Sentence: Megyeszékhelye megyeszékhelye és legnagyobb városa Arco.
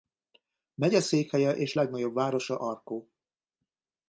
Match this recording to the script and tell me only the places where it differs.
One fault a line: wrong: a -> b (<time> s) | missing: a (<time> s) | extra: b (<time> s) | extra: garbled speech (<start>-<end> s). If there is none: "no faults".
missing: megyeszékhelye (1.5 s)